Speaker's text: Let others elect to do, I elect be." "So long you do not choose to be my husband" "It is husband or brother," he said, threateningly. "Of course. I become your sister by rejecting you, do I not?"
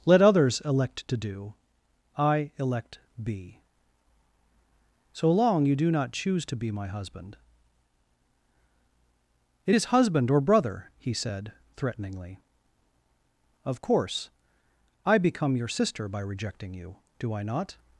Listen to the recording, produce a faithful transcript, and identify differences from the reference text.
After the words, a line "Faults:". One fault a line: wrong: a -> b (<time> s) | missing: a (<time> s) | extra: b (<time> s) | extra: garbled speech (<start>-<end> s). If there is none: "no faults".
Let others elect to do, I elect be." "So long you do not choose to be my husband" "It is husband or brother," he said, threateningly. "Of course. I become your sister by rejecting you, do I not?"
Faults:
no faults